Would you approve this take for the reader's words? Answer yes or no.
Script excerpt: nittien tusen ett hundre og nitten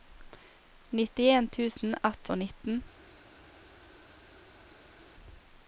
no